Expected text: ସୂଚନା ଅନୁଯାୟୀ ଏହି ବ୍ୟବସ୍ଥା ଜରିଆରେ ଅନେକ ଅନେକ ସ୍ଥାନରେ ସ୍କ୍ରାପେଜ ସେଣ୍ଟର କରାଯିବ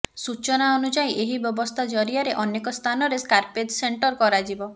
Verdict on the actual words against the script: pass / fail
fail